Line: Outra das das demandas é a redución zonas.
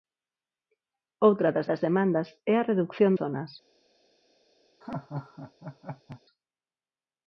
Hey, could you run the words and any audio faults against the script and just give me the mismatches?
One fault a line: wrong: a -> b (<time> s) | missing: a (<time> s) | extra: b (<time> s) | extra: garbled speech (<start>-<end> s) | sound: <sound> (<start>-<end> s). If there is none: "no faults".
sound: laugh (4.8-6.2 s)